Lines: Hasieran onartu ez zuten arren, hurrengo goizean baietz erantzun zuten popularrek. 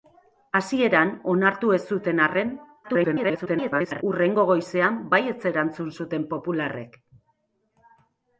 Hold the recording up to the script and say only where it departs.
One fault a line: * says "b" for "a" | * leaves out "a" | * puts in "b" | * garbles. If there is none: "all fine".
* garbles